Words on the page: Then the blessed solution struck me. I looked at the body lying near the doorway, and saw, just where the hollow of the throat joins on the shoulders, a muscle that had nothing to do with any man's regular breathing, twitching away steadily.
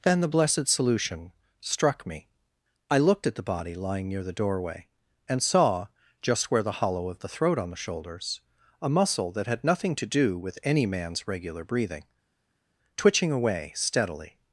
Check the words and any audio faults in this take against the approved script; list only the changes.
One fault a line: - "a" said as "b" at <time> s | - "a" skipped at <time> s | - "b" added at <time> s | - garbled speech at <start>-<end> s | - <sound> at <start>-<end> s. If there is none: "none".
- "joins" skipped at 7.6 s